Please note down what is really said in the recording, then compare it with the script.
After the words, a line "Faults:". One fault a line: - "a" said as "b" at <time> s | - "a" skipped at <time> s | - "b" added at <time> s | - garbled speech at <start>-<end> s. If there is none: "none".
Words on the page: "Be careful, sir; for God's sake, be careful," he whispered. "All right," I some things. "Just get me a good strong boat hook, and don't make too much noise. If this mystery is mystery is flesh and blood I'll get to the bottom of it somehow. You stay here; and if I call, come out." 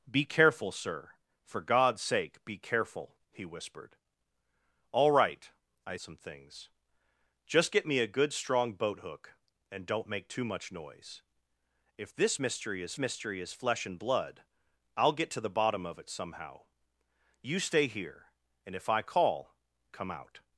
"Be careful, sir; for God's sake, be careful," he whispered. "All right," I some things. "Just get me a good strong boat hook, and don't make too much noise. If this mystery is mystery is flesh and blood I'll get to the bottom of it somehow. You stay here; and if I call, come out."
Faults:
none